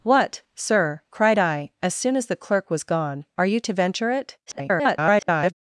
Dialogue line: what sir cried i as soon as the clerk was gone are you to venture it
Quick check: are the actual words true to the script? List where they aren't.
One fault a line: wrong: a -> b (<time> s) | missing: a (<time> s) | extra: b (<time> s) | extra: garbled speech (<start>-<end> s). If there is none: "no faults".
extra: garbled speech (4.5-5.5 s)